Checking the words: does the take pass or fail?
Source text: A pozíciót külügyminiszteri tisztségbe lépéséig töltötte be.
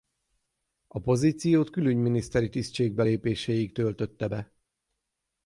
pass